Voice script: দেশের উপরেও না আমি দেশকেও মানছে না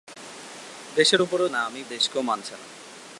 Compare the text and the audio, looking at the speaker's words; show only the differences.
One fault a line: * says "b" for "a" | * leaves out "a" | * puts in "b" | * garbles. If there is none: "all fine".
all fine